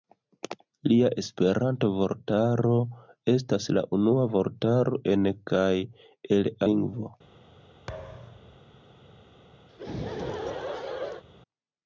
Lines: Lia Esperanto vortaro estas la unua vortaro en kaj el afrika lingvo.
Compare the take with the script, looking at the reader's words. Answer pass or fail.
fail